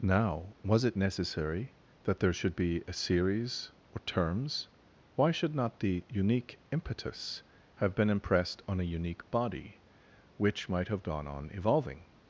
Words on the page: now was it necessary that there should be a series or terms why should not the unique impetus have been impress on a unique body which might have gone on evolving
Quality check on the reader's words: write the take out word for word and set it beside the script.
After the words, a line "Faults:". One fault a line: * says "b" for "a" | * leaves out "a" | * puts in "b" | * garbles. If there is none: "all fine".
now was it necessary that there should be a series or terms why should not the unique impetus have been impressed on a unique body which might have gone on evolving
Faults:
* says "impressed" for "impress"